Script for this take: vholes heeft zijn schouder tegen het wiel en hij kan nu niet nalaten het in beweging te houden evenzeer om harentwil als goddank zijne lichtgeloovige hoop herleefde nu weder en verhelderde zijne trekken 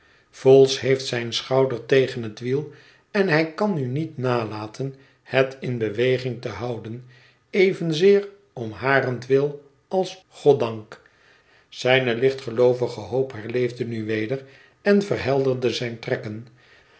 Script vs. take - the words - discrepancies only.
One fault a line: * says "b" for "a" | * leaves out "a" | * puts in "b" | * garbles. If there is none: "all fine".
all fine